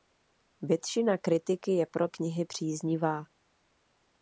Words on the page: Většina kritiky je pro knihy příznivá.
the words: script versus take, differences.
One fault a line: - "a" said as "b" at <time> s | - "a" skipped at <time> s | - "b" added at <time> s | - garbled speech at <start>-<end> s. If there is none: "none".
none